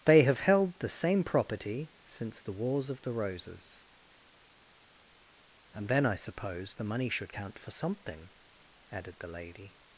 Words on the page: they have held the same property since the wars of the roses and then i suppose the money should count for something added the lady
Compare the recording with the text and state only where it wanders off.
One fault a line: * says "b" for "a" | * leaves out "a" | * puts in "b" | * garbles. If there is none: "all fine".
all fine